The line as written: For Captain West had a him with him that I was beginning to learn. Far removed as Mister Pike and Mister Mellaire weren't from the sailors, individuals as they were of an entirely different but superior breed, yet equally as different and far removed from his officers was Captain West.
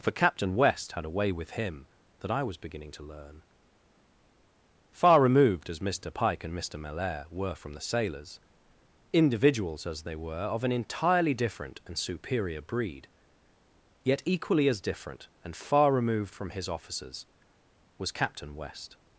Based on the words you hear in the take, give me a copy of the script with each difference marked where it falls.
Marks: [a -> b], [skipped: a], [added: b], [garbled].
For Captain West had a [him -> way] with him that I was beginning to learn. Far removed as Mister Pike and Mister Mellaire [weren't -> were] from the sailors, individuals as they were of an entirely different [but -> and] superior breed, yet equally as different and far removed from his officers was Captain West.